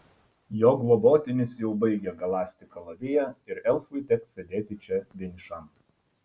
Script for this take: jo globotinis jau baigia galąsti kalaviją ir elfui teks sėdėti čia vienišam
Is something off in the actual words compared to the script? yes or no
no